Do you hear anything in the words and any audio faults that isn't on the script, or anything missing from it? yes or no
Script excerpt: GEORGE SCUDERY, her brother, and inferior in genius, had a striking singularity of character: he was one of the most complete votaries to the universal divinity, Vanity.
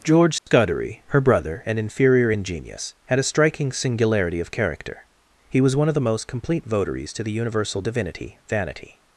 yes